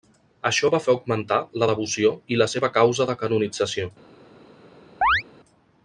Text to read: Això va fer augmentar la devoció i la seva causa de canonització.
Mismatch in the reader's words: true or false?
false